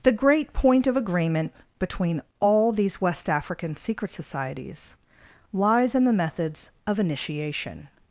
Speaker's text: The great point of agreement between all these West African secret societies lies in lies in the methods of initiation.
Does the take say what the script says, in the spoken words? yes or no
no